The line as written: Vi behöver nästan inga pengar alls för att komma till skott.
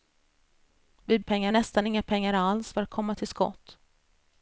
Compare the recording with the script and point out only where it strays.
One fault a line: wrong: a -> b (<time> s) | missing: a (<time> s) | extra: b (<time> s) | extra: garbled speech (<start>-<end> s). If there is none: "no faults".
wrong: behöver -> pengar (1.2 s)